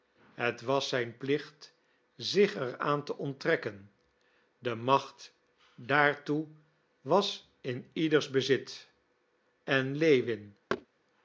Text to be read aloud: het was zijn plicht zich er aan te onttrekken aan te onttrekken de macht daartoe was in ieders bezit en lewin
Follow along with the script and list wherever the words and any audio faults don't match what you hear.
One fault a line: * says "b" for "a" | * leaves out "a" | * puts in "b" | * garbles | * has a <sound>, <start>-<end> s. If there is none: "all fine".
* leaves out "aan te onttrekken"
* has a thud, 10.7-10.9 s